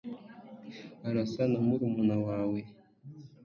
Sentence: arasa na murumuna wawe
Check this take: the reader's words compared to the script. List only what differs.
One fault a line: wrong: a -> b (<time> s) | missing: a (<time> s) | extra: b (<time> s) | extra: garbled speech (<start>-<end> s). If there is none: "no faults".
no faults